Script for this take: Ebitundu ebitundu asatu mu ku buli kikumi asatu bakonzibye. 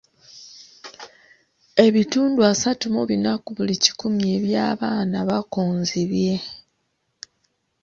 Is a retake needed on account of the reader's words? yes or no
yes